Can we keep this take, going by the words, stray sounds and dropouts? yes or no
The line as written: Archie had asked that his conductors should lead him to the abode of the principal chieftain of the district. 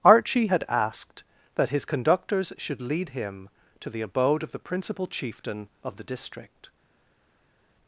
yes